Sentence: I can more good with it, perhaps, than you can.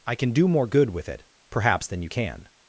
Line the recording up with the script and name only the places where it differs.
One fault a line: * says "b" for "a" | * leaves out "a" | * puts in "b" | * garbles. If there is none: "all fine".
* puts in "do"